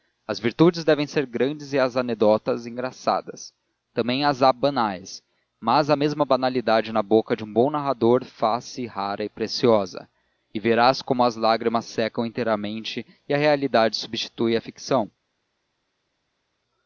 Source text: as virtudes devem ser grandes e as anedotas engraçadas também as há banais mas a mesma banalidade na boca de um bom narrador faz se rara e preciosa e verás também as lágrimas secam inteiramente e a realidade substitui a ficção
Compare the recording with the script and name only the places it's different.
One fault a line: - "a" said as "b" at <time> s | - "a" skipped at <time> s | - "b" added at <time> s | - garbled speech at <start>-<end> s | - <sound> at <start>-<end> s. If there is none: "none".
- "também" said as "como" at 11.0 s